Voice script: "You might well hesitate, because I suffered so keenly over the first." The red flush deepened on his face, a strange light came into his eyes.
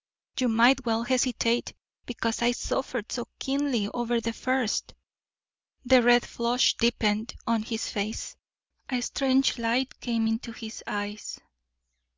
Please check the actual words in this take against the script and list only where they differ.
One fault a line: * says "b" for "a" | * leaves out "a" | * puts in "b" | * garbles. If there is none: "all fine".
all fine